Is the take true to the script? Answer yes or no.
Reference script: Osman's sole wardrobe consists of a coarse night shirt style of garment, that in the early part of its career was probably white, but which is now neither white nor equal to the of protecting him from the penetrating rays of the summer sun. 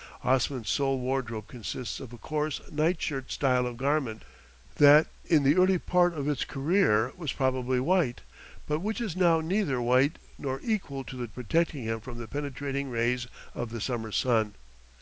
yes